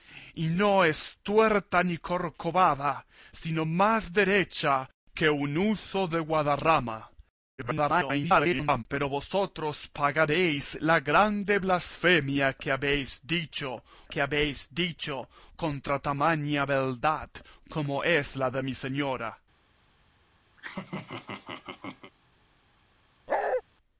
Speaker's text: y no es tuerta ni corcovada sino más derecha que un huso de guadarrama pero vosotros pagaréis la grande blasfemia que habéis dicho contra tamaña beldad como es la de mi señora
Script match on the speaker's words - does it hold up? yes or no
no